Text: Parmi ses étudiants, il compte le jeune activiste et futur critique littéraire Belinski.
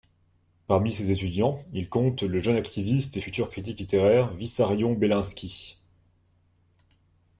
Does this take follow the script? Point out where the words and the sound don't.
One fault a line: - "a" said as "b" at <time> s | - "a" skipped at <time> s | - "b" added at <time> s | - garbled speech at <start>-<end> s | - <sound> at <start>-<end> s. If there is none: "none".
- "Vissarion" added at 4.3 s